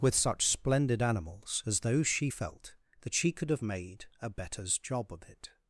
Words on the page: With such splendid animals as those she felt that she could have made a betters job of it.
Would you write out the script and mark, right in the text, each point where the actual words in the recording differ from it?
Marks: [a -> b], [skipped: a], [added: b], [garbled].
With such splendid animals as those she felt that she could have made a betters job of it.